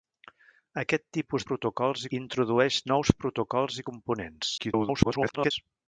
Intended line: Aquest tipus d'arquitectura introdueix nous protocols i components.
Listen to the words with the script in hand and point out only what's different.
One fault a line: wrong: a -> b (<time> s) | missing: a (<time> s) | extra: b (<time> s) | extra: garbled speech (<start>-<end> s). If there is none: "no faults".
wrong: d'arquitectura -> protocols (1.5 s)
extra: garbled speech (4.6-5.5 s)